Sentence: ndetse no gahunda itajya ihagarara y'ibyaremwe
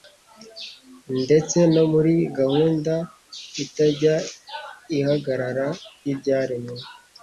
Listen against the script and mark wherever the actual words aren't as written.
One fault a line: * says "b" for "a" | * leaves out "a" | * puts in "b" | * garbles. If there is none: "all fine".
* puts in "muri"